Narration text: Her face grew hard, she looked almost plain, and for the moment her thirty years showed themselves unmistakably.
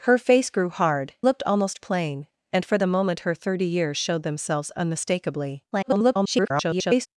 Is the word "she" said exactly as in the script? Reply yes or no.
no